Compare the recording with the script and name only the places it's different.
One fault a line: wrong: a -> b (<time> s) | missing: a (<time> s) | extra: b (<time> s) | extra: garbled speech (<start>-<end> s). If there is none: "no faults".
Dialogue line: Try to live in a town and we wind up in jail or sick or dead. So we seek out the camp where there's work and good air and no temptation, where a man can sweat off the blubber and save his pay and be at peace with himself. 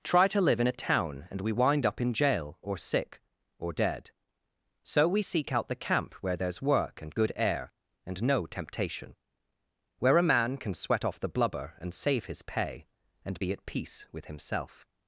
no faults